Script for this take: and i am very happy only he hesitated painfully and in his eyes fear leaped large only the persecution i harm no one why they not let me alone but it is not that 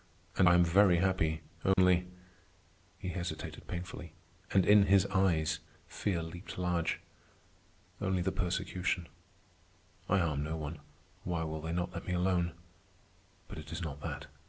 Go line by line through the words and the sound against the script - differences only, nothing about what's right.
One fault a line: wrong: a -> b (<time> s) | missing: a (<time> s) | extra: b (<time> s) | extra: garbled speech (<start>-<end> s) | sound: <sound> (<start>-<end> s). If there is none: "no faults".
sound: dropout (1.7-1.8 s)
extra: will (11.4 s)